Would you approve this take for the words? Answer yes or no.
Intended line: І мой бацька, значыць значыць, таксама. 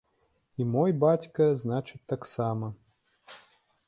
no